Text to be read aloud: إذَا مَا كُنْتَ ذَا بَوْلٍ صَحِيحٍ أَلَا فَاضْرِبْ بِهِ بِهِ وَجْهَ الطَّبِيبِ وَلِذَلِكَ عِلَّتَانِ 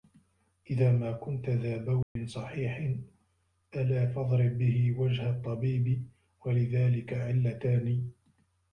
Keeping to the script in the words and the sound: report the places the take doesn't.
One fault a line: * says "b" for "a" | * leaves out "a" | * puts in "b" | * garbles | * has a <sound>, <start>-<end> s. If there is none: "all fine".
* has a dropout, 2.0-2.2 s
* leaves out "بِهِ"